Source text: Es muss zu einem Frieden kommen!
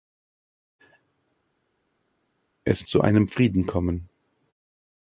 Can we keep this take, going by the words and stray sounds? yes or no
no